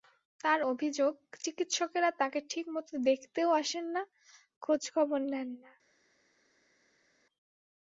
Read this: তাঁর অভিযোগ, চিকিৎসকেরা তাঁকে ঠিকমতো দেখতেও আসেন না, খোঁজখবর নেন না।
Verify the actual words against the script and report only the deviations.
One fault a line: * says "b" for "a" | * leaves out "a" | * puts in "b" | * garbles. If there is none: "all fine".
all fine